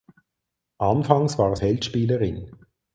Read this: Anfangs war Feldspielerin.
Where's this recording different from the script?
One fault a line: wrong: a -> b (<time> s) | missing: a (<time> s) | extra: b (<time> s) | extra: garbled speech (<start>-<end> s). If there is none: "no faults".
no faults